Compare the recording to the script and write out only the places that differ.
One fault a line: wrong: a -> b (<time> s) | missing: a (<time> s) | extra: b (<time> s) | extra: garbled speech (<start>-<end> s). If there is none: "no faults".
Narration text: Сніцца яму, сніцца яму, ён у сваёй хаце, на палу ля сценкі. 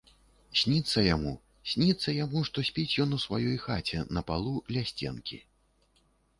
extra: што спіць (2.5 s)